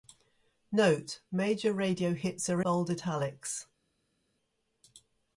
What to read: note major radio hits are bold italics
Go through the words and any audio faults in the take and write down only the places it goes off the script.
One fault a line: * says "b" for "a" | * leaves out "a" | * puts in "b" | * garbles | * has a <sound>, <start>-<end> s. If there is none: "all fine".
all fine